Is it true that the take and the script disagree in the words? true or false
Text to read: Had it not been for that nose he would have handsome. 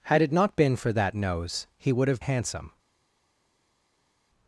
false